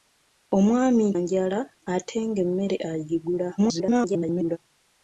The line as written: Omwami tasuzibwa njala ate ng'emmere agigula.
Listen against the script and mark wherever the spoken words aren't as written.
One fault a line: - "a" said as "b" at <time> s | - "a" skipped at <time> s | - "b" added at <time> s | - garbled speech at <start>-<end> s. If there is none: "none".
- "tasuzibwa" skipped at 1.1 s
- garbled speech at 3.6-4.6 s